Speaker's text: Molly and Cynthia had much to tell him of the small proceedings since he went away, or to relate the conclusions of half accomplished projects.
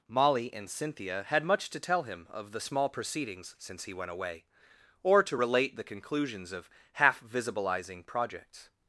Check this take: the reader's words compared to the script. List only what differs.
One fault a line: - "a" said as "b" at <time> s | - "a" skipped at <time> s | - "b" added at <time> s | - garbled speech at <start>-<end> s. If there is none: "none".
- "accomplished" said as "visibilizing" at 7.2 s